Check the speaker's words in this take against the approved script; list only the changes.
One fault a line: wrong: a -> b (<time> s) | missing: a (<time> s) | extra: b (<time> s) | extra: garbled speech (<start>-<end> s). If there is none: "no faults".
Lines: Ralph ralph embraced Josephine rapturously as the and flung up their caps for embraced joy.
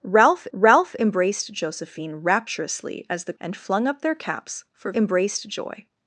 no faults